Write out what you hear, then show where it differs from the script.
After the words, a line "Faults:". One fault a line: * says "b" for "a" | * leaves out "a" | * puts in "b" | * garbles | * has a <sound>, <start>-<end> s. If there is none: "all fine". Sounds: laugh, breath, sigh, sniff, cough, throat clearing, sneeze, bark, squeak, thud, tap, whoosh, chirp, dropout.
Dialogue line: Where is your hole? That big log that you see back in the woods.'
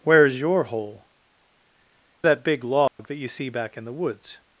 Where is your hole? That big log that you see back in the woods.'
Faults:
* has a dropout, 2.9-3.0 s